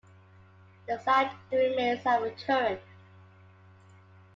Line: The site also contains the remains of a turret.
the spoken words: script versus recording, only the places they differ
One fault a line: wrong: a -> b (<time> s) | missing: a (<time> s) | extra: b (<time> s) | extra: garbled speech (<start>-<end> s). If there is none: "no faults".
missing: also contains (1.3 s)